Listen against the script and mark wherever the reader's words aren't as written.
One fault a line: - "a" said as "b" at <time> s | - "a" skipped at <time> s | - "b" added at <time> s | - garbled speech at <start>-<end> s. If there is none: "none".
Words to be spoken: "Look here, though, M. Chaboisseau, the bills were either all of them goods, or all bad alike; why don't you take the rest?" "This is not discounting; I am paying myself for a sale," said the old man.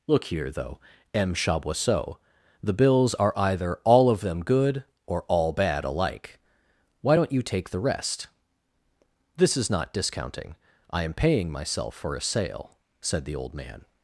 - "were" said as "are" at 3.1 s
- "goods" said as "good" at 4.4 s